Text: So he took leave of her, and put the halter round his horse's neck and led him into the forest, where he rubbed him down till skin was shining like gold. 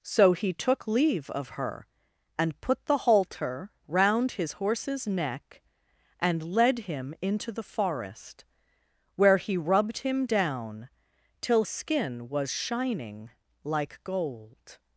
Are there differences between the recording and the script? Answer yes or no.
no